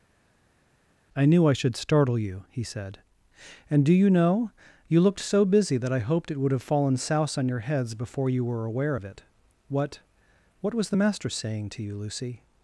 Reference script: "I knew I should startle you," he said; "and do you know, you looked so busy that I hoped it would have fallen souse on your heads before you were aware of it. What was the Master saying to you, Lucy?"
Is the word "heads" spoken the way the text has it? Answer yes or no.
yes